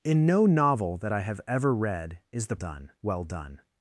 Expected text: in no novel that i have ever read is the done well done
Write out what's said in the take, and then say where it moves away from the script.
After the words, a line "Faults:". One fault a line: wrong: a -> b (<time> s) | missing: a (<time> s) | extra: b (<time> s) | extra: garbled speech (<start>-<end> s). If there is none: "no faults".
in no novel that i have ever read is the done well done
Faults:
no faults